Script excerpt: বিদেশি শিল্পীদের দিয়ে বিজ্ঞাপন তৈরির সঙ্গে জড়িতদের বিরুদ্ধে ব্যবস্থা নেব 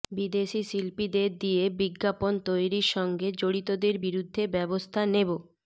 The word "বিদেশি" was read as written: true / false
true